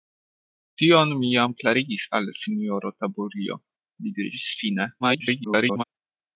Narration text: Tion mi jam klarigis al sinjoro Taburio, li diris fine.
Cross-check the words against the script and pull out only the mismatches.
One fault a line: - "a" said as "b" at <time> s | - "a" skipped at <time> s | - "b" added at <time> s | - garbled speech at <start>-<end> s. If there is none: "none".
- garbled speech at 5.0-5.8 s